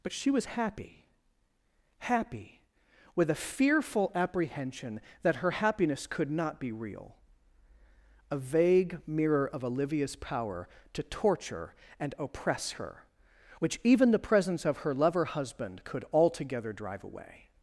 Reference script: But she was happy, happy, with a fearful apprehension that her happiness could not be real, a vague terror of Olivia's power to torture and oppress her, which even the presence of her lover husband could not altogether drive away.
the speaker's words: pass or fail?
fail